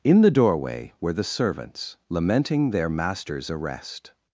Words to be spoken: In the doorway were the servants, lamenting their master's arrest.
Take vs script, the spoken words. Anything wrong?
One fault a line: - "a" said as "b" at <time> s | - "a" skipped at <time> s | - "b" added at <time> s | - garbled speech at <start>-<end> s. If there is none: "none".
none